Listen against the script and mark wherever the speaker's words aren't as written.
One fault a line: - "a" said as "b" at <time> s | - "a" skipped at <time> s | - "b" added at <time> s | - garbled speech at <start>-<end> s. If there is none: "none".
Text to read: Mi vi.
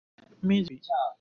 none